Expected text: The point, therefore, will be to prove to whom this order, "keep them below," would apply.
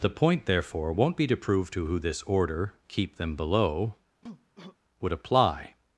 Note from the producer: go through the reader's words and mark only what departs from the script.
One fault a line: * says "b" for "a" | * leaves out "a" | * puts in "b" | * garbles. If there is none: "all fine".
* says "won't" for "will"
* says "who" for "whom"